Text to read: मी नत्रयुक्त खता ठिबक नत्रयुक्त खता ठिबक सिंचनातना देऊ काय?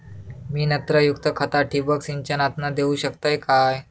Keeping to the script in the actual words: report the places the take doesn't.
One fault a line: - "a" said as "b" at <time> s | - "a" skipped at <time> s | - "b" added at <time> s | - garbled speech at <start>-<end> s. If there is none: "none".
- "नत्रयुक्त खता ठिबक" skipped at 2.0 s
- "शकतय" added at 3.0 s